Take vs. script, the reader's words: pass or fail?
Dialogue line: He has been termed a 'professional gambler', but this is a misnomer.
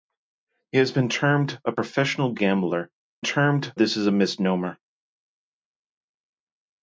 fail